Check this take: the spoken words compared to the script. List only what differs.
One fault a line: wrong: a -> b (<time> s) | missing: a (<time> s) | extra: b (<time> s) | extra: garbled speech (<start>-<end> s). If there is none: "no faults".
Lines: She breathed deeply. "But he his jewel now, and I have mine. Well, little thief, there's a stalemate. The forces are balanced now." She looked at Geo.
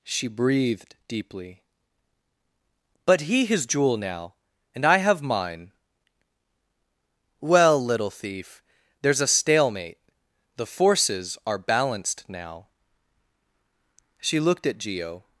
no faults